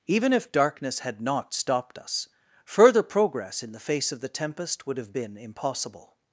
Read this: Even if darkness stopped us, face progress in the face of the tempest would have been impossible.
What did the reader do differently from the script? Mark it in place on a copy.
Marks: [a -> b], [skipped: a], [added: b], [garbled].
Even if darkness [added: had not] stopped us, [face -> further] progress in the face of the tempest would have been impossible.